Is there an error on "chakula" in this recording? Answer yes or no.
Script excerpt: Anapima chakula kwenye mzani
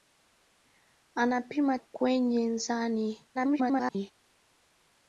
yes